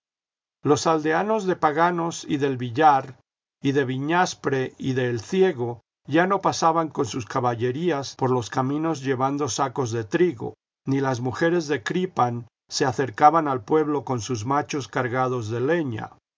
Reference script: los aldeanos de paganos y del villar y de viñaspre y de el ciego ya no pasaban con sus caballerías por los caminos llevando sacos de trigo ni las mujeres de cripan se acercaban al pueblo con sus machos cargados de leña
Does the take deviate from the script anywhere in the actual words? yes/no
no